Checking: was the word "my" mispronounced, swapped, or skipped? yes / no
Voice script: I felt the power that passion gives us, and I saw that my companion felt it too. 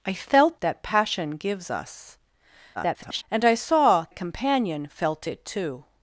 yes